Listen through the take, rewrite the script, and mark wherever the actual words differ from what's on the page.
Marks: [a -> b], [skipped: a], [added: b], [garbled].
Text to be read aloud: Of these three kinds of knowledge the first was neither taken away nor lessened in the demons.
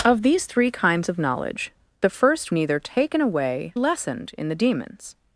Of these three kinds of knowledge the first [skipped: was] neither taken away [skipped: nor] lessened in the demons.